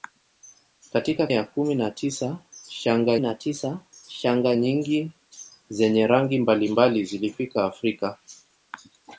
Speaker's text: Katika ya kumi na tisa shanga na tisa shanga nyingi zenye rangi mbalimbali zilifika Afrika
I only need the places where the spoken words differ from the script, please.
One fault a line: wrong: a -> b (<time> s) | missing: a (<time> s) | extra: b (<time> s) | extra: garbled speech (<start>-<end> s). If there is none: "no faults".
no faults